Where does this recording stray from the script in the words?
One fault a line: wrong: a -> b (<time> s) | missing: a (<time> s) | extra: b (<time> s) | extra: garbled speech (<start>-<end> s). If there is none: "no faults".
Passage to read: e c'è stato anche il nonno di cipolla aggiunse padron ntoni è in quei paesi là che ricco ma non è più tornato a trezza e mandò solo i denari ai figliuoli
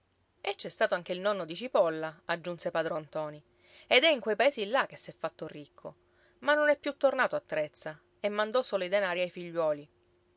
extra: ed (3.9 s)
extra: s'è fatto (5.0 s)